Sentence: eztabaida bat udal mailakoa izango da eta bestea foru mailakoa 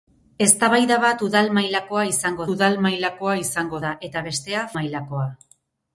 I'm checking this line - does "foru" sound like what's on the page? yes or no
no